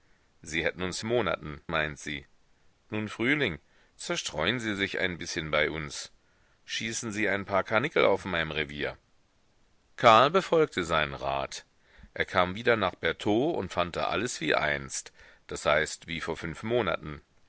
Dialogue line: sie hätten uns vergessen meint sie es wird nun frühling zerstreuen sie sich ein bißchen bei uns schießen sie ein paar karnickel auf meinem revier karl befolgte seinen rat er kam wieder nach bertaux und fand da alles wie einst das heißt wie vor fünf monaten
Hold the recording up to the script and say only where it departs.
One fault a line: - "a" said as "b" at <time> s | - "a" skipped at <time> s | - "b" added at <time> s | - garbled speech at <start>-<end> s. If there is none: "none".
- "vergessen" said as "monaten" at 1.0 s
- "es wird" skipped at 2.3 s